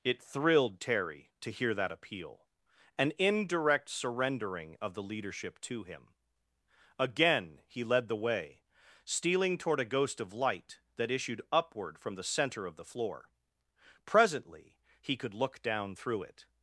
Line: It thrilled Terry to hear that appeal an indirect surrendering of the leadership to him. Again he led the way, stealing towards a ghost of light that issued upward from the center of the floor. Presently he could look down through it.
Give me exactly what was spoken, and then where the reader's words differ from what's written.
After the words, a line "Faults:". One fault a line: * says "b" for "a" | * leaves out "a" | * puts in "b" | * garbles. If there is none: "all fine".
It thrilled Terry to hear that appeal an indirect surrendering of the leadership to him. Again he led the way, stealing toward a ghost of light that issued upward from the center of the floor. Presently he could look down through it.
Faults:
* says "toward" for "towards"